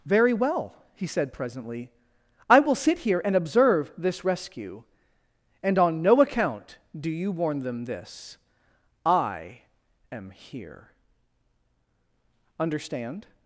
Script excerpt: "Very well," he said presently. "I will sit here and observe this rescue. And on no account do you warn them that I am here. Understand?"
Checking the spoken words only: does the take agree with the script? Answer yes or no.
no